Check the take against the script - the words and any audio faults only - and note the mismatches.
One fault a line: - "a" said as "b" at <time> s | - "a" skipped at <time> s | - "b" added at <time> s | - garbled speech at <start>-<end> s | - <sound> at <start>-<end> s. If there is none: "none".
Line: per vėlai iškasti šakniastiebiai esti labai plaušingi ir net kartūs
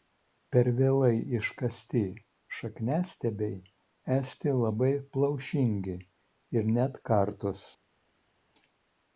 none